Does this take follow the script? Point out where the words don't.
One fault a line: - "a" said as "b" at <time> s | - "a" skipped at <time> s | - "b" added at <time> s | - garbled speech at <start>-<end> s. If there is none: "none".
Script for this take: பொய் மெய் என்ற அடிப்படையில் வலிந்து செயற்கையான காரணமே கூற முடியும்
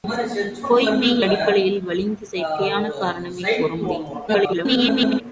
- "என்ற" skipped at 1.2 s
- garbled speech at 4.3-5.2 s